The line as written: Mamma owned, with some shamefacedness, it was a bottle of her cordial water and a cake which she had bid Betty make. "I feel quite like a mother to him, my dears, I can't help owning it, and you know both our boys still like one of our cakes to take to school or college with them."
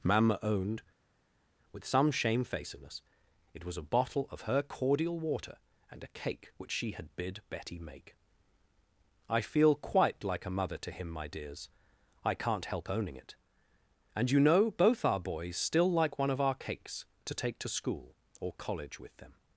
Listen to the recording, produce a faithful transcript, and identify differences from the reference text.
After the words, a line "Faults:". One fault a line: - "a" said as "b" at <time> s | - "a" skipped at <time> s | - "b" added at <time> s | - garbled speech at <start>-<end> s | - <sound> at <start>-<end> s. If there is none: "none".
Mamma owned, with some shamefacedness, it was a bottle of her cordial water and a cake which she had bid Betty make. "I feel quite like a mother to him, my dears, I can't help owning it, and you know both our boys still like one of our cakes to take to school or college with them."
Faults:
none